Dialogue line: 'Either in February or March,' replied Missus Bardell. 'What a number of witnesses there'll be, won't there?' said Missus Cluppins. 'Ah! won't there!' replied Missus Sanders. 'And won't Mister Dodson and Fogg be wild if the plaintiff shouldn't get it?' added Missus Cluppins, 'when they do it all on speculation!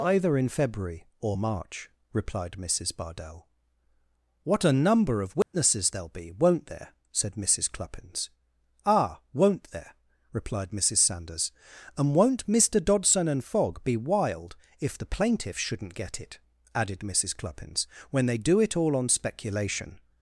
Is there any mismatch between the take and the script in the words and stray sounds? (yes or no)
yes